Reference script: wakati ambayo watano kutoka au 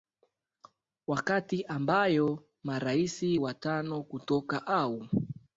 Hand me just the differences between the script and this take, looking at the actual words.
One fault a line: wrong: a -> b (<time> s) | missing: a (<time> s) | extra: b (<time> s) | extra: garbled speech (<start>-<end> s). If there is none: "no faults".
extra: marais (2.6 s)